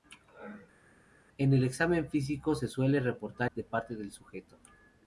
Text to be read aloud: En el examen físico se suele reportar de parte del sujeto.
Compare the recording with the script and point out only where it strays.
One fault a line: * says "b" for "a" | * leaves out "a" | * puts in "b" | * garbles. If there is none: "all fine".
all fine